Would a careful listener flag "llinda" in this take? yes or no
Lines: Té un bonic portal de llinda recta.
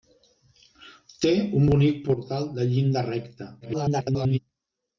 no